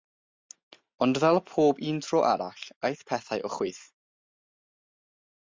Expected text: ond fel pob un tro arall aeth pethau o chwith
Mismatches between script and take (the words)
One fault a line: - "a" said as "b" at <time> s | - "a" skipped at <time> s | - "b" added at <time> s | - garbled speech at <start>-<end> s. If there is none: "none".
none